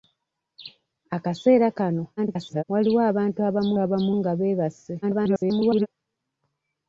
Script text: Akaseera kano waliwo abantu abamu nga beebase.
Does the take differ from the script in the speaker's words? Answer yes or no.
yes